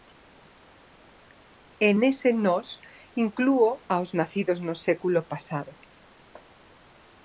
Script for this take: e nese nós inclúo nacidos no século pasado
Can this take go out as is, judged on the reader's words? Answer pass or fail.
fail